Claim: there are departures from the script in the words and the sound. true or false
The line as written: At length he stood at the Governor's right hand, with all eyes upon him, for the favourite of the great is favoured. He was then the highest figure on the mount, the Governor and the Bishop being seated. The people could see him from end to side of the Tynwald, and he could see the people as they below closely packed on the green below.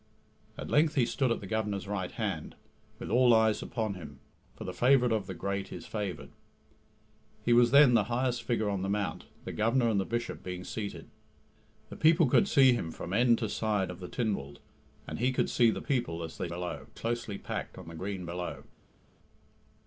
false